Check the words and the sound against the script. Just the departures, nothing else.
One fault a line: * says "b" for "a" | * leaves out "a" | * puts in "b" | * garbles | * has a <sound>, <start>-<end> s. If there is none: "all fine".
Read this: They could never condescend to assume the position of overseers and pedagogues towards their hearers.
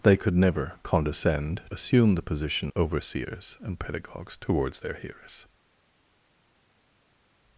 * leaves out "to"
* leaves out "of"